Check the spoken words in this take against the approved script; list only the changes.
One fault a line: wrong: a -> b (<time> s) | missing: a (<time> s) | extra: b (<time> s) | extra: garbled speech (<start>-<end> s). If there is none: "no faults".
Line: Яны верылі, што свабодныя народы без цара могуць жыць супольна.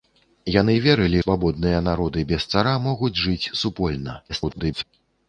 missing: што (1.2 s)
extra: garbled speech (4.3-4.8 s)